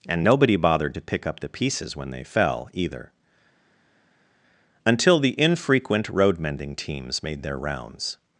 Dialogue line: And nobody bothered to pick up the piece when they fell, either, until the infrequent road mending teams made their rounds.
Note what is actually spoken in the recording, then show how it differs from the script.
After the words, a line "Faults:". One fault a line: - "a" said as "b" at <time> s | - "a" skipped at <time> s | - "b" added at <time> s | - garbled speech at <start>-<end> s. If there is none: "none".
And nobody bothered to pick up the pieces when they fell, either, until the infrequent road mending teams made their rounds.
Faults:
- "piece" said as "pieces" at 1.5 s